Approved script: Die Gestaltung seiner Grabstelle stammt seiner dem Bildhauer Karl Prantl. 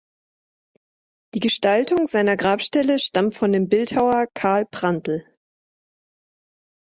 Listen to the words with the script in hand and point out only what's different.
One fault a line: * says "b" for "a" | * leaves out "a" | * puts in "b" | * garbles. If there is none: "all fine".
* says "von" for "seiner"